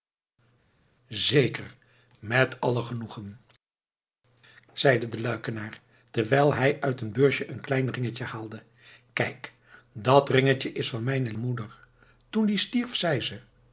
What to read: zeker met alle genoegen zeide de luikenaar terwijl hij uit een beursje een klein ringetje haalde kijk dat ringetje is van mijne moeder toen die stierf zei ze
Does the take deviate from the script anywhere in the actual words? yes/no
no